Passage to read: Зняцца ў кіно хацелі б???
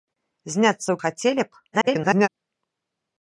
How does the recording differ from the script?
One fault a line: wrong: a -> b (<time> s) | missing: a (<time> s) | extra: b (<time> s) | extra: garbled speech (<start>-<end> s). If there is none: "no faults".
missing: кіно (1.0 s)
extra: garbled speech (1.7-2.3 s)